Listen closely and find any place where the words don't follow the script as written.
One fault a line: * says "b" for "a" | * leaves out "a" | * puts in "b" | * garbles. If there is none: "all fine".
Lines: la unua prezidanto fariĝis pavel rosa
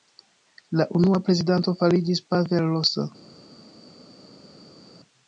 all fine